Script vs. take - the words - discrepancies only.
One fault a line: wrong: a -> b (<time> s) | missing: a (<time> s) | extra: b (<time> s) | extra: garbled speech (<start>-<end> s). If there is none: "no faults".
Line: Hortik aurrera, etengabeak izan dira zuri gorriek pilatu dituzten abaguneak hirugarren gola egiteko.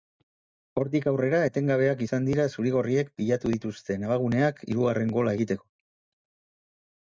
no faults